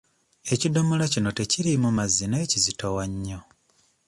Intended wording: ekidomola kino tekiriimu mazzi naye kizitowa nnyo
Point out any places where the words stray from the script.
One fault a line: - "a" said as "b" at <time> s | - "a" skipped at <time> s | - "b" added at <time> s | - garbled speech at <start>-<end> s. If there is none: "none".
none